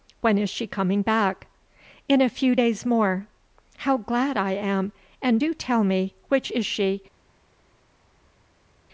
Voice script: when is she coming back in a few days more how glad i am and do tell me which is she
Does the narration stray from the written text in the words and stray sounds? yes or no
no